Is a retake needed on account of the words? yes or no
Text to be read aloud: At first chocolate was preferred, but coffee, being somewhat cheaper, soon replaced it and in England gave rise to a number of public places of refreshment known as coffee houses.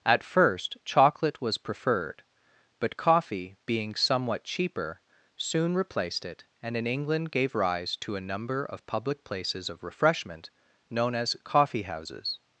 no